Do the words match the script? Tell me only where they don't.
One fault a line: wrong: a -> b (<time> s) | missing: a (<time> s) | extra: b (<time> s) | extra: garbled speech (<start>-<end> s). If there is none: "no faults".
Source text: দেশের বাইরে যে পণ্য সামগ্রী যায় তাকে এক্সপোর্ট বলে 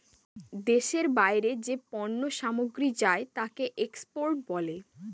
no faults